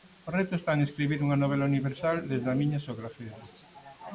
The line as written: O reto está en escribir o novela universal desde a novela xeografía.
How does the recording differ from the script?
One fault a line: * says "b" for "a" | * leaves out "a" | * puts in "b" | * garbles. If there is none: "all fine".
* says "unha" for "o"
* says "miña" for "novela"